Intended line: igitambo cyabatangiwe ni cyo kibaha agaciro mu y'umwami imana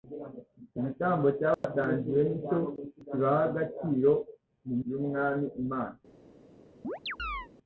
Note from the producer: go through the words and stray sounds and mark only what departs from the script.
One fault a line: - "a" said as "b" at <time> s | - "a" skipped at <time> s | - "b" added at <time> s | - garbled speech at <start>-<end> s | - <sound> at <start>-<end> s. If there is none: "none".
- dropout at 1.5-1.6 s
- chirp at 6.8-7.5 s